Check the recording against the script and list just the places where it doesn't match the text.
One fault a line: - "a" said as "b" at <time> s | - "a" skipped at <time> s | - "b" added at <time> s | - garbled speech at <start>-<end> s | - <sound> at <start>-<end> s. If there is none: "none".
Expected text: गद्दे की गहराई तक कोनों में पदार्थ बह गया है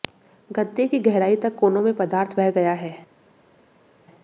none